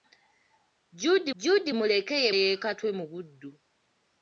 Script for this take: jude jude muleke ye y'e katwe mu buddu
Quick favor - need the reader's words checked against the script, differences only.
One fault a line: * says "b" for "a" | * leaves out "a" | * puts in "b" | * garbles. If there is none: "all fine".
all fine